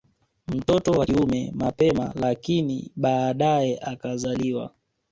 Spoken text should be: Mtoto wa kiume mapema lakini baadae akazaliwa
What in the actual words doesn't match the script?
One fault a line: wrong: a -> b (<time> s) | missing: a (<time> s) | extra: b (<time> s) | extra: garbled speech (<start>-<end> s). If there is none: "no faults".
no faults